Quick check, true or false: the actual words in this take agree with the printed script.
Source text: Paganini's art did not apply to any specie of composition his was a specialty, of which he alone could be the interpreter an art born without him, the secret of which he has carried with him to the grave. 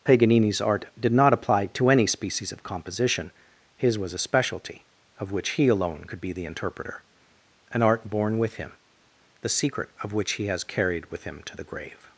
false